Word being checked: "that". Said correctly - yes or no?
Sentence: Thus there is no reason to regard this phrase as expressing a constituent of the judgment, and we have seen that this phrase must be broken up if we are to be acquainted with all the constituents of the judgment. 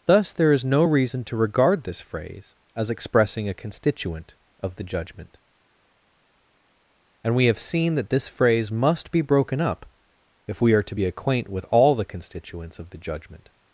yes